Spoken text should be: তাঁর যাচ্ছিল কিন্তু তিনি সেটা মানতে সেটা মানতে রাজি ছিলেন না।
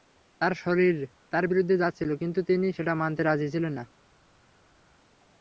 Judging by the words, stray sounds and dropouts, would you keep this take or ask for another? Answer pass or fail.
fail